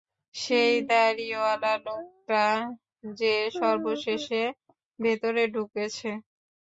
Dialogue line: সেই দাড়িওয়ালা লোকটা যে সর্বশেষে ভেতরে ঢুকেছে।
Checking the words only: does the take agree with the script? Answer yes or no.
yes